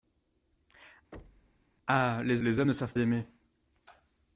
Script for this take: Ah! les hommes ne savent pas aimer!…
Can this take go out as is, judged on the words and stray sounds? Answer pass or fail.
fail